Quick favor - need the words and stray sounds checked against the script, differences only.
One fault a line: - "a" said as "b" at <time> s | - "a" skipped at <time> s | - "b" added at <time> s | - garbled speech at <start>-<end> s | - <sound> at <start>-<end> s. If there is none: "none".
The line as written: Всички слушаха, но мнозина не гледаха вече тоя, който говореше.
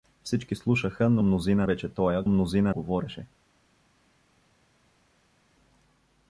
- "не гледаха" skipped at 1.7 s
- "който" said as "мнозина" at 2.3 s